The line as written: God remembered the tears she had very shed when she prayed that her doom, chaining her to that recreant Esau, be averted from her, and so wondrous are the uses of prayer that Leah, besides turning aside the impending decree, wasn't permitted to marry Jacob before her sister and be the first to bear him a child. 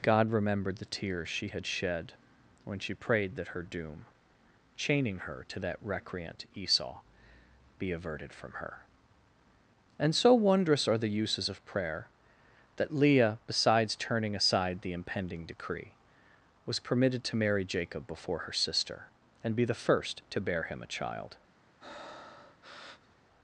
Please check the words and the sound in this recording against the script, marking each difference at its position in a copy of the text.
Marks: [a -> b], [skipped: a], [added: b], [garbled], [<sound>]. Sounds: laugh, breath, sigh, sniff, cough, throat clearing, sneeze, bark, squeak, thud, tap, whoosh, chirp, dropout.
God remembered the tears she had [skipped: very] shed when she prayed that her doom, chaining her to that recreant Esau, be averted from her, and so wondrous are the uses of prayer that Leah, besides turning aside the impending decree, [wasn't -> was] permitted to marry Jacob before her sister and be the first to bear him a child. [breath]